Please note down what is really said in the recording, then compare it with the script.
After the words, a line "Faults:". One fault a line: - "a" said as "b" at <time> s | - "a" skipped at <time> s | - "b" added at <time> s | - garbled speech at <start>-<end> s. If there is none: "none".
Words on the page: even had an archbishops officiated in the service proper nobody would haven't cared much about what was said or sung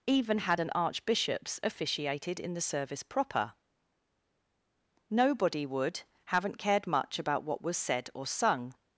even had an archbishops officiated in the service proper nobody would haven't cared much about what was said or sung
Faults:
none